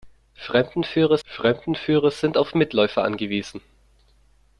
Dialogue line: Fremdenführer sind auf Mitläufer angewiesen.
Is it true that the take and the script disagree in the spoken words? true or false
true